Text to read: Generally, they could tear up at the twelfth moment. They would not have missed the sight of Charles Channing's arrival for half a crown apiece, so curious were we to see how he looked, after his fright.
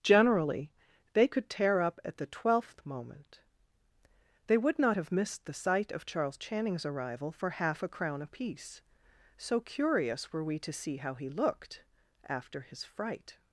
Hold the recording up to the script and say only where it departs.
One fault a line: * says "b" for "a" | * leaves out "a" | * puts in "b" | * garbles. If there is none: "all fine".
all fine